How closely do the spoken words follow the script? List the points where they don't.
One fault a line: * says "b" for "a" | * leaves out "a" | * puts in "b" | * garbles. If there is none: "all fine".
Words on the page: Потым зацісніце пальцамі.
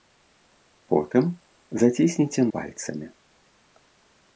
all fine